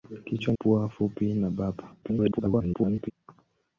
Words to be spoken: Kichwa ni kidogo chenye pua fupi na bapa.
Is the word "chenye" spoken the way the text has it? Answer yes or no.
no